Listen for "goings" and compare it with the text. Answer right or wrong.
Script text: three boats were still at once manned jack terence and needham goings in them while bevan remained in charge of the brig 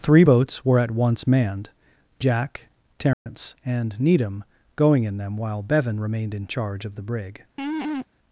wrong